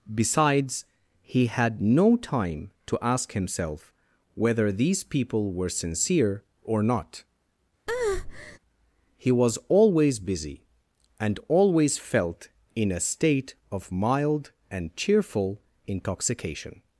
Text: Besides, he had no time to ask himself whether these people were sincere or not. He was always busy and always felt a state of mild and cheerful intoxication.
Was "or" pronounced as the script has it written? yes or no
yes